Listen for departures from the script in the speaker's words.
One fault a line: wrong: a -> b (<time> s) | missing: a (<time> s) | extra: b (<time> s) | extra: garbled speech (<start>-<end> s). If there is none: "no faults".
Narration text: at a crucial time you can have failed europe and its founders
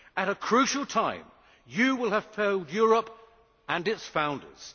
wrong: can -> will (1.9 s)